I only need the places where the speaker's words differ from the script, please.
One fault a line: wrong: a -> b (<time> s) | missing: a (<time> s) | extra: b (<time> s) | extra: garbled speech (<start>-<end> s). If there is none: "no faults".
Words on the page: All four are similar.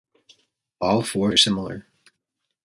no faults